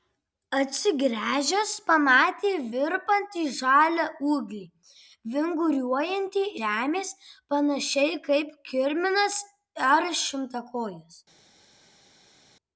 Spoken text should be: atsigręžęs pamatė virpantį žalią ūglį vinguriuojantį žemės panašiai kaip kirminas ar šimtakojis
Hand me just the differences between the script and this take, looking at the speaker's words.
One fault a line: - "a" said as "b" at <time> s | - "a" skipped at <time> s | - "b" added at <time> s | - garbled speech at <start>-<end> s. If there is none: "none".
none